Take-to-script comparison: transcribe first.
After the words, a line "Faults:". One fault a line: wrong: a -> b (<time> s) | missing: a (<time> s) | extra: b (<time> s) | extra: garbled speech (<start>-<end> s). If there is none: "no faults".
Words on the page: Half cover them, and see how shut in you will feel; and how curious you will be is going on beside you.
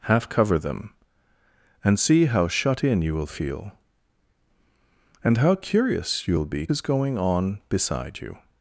Half cover them, and see how shut in you will feel; and how curious you will be is going on beside you.
Faults:
no faults